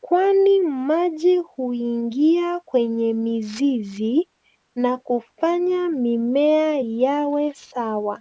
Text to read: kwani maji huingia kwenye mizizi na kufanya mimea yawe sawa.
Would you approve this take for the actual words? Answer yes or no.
yes